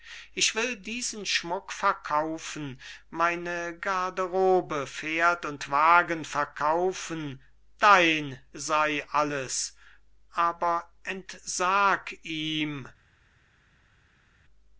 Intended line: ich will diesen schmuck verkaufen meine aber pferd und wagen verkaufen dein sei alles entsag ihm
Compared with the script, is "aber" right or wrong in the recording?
wrong